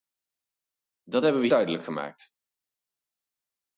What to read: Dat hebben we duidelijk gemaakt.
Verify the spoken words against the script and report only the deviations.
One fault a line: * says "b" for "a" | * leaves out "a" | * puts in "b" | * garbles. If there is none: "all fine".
all fine